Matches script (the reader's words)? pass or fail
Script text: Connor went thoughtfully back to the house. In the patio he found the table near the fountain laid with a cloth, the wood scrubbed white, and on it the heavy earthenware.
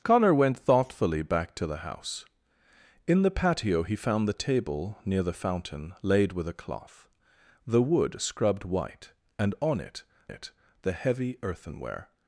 fail